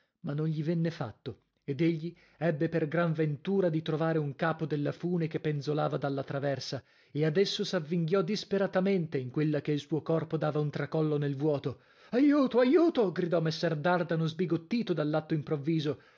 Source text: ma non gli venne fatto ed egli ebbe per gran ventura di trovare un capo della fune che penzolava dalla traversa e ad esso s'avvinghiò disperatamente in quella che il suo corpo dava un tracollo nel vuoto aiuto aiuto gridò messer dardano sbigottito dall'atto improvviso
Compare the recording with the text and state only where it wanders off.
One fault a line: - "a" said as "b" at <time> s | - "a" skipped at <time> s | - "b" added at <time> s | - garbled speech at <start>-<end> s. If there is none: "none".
none